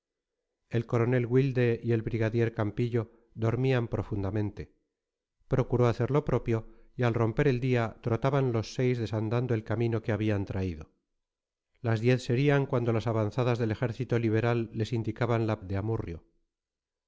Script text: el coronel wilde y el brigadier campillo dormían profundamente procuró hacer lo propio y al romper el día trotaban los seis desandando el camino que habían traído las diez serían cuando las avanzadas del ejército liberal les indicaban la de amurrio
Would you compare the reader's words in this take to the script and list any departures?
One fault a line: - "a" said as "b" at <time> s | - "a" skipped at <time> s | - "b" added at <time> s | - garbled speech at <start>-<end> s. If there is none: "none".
none